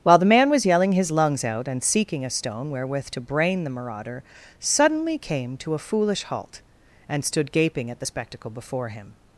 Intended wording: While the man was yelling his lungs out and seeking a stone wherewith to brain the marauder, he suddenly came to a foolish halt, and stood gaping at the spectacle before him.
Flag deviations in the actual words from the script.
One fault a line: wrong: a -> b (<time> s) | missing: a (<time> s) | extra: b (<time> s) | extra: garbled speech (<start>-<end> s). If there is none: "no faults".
missing: he (4.2 s)